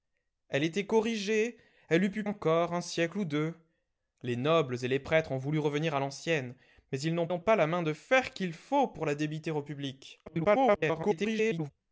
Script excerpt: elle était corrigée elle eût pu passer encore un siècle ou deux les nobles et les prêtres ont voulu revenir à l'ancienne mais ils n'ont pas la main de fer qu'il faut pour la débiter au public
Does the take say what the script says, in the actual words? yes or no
no